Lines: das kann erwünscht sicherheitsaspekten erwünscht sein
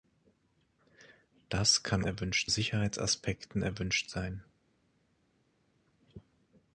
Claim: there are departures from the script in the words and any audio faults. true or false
false